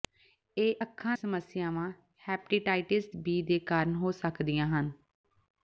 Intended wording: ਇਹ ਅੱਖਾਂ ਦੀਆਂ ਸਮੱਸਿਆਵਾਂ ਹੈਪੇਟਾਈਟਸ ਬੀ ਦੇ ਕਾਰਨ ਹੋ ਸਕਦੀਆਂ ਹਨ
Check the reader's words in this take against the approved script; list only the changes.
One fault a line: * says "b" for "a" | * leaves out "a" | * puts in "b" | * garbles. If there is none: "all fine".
* leaves out "ਦੀਆਂ"